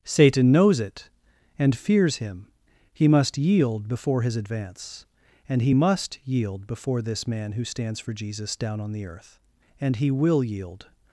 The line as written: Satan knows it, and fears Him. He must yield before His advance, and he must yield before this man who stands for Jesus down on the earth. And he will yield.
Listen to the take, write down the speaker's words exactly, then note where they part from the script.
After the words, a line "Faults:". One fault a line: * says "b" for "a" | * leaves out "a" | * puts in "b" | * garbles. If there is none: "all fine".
Satan knows it, and fears Him. He must yield before His advance, and he must yield before this man who stands for Jesus down on the earth. And he will yield.
Faults:
all fine